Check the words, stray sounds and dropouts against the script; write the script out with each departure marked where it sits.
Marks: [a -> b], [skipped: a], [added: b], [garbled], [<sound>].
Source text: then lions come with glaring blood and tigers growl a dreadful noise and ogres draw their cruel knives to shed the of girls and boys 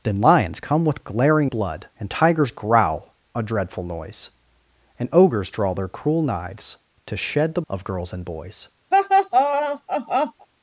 then lions come with glaring blood and tigers growl a dreadful noise and ogres draw their cruel knives to shed the of girls and boys [laugh]